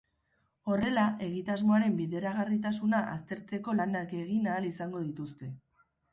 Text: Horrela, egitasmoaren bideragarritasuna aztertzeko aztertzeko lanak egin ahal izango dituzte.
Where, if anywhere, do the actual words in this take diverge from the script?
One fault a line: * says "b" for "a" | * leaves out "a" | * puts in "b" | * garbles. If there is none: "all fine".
* leaves out "aztertzeko"